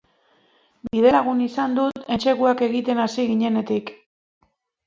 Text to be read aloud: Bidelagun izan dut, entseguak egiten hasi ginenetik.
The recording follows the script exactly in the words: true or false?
true